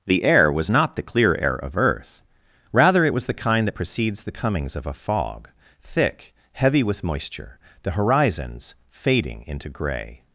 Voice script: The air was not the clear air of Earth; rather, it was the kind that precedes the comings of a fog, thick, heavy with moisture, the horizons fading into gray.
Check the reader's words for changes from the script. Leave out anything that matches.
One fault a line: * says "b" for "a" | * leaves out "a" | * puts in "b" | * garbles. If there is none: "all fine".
all fine